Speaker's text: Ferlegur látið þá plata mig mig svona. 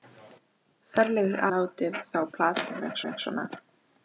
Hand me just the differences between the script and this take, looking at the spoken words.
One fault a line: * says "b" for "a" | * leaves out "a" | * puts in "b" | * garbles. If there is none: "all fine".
all fine